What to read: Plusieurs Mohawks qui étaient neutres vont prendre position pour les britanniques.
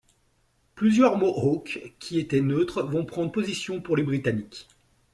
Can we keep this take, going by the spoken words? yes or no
yes